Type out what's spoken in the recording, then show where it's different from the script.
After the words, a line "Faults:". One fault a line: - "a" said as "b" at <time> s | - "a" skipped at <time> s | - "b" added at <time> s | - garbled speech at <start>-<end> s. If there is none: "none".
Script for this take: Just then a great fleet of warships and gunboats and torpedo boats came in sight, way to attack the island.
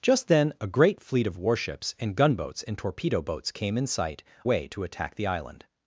Just then a great fleet of warships and gunboats and torpedo boats came in sight, way to attack the island.
Faults:
none